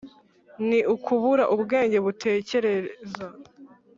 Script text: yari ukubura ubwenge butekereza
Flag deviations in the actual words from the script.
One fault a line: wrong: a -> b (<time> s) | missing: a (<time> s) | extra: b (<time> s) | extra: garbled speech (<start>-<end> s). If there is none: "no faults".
wrong: yari -> ni (0.7 s)